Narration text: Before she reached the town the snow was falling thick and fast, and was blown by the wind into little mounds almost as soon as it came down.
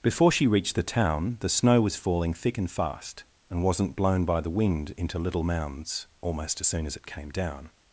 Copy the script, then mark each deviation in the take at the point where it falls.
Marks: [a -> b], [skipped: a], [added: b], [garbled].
Before she reached the town the snow was falling thick and fast, and [was -> wasn't] blown by the wind into little mounds almost as soon as it came down.